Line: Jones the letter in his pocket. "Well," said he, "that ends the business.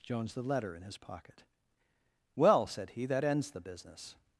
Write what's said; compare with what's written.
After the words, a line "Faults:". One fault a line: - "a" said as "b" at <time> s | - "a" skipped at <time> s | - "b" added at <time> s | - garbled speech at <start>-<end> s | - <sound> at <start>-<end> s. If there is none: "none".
Jones the letter in his pocket. "Well," said he, "that ends the business.
Faults:
none